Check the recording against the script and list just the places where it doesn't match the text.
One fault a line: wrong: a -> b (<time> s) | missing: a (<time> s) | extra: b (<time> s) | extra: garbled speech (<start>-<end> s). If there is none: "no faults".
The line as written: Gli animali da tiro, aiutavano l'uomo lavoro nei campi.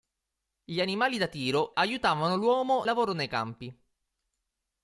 no faults